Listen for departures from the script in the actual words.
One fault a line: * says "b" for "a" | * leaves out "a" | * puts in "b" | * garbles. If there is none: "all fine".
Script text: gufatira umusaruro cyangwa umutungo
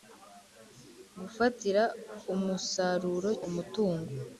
* leaves out "cyangwa"